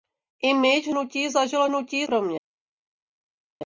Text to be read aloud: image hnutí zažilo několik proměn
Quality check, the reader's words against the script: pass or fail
fail